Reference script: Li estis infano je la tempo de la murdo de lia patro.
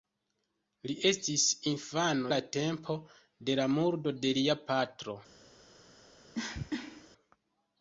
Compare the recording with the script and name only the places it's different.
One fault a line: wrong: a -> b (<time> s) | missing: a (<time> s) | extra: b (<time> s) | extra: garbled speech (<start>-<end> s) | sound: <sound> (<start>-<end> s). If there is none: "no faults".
missing: je (2.3 s)
sound: cough (6.3-7.1 s)